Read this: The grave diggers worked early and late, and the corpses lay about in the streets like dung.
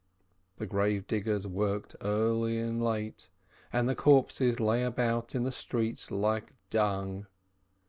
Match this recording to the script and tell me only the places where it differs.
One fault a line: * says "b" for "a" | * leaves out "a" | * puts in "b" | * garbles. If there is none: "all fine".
all fine